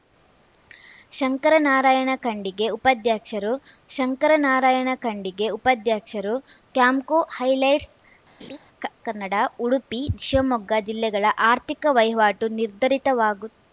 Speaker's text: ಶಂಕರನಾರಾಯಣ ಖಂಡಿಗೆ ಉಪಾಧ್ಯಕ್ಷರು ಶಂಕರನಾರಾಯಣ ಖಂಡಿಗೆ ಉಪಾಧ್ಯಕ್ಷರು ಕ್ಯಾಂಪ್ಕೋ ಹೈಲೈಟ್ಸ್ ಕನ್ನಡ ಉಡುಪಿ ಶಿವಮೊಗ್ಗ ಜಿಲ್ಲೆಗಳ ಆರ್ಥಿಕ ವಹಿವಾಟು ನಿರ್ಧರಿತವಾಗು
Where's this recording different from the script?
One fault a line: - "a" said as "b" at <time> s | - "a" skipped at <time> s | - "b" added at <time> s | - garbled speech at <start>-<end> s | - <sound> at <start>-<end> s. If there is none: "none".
- laugh at 8.4-8.6 s